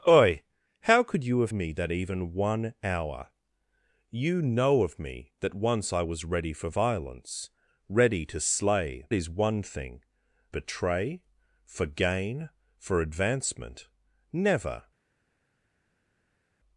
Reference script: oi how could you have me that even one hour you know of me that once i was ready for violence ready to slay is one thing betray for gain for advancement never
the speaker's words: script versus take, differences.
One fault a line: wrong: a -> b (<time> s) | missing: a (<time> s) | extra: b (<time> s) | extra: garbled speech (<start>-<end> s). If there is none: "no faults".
no faults